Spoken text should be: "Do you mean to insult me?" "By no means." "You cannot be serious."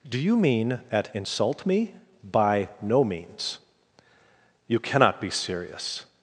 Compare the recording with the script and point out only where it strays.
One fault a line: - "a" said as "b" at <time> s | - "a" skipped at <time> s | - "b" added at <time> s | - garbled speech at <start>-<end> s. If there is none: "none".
- "to" said as "at" at 0.9 s